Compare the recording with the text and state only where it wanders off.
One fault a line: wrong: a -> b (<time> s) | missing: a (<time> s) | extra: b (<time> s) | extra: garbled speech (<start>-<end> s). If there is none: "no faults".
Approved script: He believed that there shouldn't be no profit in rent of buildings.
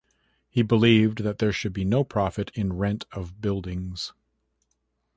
wrong: shouldn't -> should (1.5 s)